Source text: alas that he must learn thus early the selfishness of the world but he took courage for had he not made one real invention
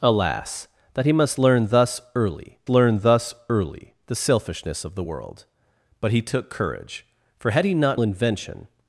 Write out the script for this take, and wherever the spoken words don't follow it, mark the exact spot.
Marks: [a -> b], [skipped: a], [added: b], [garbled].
alas that he must learn thus early [added: learn thus early] the selfishness of the world but he took courage for had he not [skipped: made one real] invention